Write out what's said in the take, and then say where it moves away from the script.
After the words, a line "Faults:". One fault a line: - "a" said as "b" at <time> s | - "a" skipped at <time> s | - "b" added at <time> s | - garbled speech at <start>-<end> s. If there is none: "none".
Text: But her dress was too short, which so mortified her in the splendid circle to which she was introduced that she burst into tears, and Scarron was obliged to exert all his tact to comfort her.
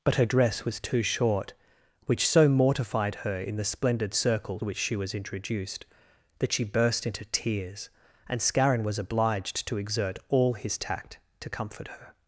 But her dress was too short, which so mortified her in the splendid circle which she was introduced that she burst into tears, and Scarron was obliged to exert all his tact to comfort her.
Faults:
- "to" skipped at 4.6 s